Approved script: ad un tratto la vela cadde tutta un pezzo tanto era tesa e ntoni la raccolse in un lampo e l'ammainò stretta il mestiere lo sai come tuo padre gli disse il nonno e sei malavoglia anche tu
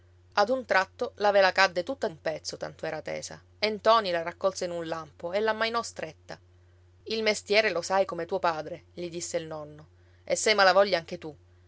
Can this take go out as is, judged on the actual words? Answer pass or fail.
pass